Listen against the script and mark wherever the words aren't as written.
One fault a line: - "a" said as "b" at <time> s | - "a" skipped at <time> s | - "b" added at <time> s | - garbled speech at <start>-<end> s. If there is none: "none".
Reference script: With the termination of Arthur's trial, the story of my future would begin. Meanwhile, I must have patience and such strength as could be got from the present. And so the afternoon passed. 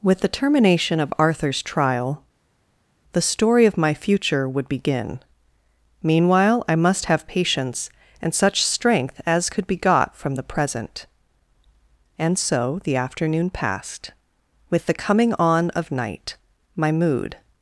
- "With the coming on of night my mood" added at 14.7 s